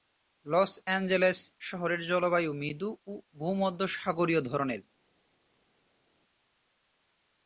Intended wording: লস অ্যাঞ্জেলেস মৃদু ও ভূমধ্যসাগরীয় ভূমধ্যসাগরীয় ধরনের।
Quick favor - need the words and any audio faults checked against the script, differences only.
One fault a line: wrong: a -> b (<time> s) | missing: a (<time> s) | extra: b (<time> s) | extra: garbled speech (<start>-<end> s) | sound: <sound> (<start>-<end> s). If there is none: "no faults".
extra: শহরের জলবায়ু (1.6 s)
missing: ভূমধ্যসাগরীয় (4.4 s)